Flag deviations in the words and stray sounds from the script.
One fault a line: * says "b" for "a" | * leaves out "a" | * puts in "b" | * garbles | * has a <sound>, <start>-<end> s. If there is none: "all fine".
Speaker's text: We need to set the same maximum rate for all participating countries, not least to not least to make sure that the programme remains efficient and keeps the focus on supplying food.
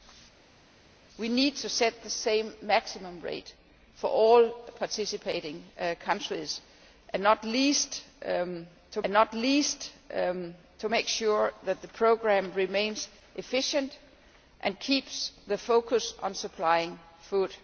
all fine